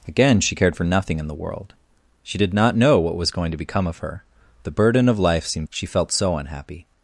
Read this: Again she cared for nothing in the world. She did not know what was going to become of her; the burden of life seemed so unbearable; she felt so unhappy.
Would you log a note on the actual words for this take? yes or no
yes